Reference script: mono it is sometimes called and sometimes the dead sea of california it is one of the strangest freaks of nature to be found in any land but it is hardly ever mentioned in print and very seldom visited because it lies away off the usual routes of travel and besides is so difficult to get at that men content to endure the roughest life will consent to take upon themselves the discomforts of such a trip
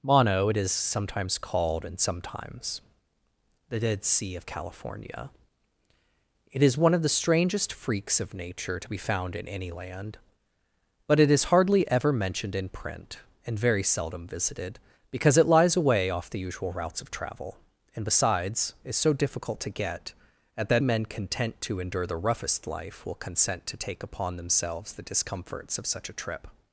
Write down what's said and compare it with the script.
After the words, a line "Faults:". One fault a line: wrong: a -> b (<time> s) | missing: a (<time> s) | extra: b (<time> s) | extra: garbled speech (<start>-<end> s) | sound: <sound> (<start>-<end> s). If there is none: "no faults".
mono it is sometimes called and sometimes the dead sea of california it is one of the strangest freaks of nature to be found in any land but it is hardly ever mentioned in print and very seldom visited because it lies away off the usual routes of travel and besides is so difficult to get at that men content to endure the roughest life will consent to take upon themselves the discomforts of such a trip
Faults:
no faults